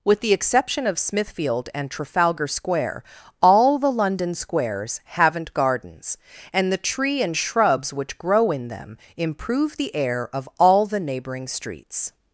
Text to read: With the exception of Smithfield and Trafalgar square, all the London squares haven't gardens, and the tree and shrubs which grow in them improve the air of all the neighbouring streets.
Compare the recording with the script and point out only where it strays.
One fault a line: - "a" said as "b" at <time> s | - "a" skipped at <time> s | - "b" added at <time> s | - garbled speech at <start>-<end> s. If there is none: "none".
none